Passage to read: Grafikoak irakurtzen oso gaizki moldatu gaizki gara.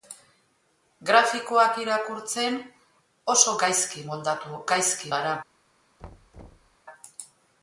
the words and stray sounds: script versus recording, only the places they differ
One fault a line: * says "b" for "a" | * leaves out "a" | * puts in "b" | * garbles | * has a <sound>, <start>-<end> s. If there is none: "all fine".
* has a thud, 6.0-6.8 s